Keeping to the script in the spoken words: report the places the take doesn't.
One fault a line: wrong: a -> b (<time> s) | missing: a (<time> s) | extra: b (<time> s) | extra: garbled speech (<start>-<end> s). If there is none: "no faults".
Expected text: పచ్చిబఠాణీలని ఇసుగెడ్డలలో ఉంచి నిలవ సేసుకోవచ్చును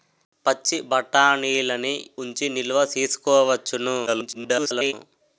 missing: ఇసుగెడ్డలలో (1.9 s)
extra: garbled speech (4.1-4.9 s)